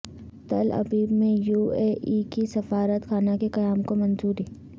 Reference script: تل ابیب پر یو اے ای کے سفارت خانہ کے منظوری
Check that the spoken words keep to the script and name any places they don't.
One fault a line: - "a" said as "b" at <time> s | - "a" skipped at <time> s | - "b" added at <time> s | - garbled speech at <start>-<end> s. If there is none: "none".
- "پر" said as "میں" at 1.1 s
- "قیام کو" added at 3.5 s